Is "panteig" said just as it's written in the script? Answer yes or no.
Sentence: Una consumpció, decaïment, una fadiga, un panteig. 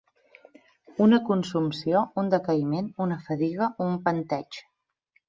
yes